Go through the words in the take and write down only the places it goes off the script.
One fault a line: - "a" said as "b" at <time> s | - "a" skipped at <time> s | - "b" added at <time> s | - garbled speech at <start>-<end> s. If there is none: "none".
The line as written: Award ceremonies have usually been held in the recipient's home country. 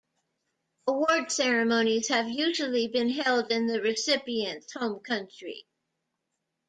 none